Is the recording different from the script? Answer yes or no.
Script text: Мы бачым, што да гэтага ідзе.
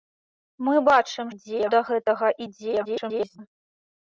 yes